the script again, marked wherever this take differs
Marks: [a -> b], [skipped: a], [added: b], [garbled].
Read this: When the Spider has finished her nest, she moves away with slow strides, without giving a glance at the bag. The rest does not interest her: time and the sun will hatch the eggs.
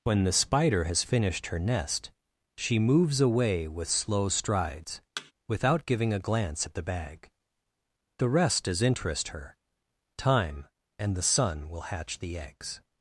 When the Spider has finished her nest, she moves away with slow strides, without giving a glance at the bag. The rest does [skipped: not] interest her: time and the sun will hatch the eggs.